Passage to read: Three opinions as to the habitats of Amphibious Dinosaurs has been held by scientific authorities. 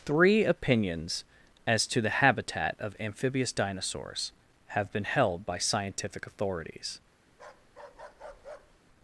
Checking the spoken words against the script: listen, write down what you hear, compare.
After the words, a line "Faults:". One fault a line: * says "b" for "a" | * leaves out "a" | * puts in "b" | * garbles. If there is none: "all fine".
Three opinions as to the habitat of Amphibious Dinosaurs have been held by scientific authorities.
Faults:
* says "habitat" for "habitats"
* says "have" for "has"